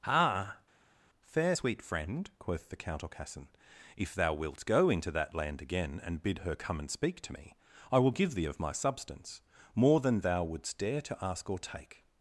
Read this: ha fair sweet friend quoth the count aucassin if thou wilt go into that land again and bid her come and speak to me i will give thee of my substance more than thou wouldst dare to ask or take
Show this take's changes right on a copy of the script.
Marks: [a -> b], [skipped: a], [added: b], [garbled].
ha fair sweet friend quoth the count aucassin if thou wilt go into that land again and bid her come and speak to me i will give thee of my substance more than thou wouldst dare to ask or take